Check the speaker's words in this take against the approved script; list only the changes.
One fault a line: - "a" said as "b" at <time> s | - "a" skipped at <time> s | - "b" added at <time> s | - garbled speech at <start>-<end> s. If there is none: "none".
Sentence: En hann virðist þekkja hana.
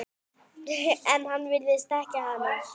none